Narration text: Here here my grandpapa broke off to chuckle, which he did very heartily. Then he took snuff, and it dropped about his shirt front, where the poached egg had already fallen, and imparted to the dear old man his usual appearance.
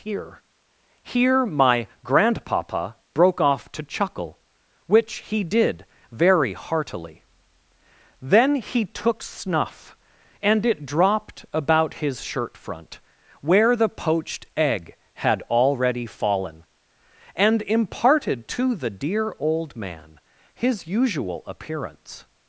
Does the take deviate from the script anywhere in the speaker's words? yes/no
no